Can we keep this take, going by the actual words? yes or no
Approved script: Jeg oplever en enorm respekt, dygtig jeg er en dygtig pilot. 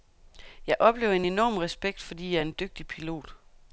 no